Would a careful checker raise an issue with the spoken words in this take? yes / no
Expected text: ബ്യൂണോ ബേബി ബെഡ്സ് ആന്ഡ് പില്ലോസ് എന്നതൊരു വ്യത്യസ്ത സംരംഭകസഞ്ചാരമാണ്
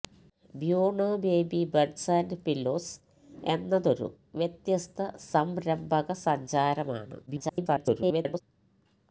yes